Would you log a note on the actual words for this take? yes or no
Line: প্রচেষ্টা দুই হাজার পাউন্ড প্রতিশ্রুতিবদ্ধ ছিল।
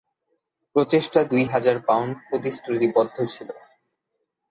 no